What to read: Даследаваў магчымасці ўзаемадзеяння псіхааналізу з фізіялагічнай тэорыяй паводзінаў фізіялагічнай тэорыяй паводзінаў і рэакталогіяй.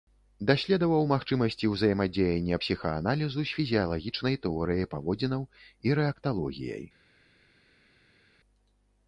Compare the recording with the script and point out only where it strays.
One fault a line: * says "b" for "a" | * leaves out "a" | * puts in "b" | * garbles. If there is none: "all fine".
* leaves out "фізіялагічнай тэорыяй паводзінаў"